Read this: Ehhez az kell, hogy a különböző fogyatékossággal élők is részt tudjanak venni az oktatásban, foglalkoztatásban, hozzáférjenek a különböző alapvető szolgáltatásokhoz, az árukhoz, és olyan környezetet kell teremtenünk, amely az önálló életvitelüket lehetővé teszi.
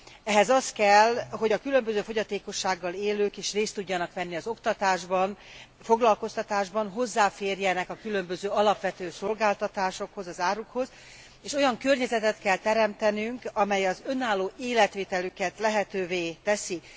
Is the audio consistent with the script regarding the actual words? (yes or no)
yes